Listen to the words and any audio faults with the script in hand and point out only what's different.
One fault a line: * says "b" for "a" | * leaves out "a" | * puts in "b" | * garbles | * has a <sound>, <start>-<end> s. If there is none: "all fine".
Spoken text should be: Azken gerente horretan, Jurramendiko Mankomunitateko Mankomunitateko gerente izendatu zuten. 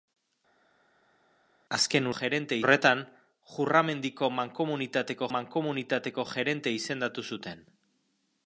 all fine